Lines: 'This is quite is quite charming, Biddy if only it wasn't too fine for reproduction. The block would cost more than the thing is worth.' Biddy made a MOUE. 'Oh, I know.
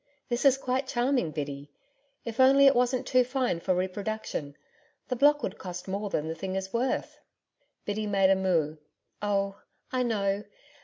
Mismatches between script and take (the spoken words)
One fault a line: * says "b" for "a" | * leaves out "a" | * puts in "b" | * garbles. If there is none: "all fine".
* leaves out "is quite"